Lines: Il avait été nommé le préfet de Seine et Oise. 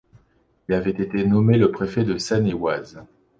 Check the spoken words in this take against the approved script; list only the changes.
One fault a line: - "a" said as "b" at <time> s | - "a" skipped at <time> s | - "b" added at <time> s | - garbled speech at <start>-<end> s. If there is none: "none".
none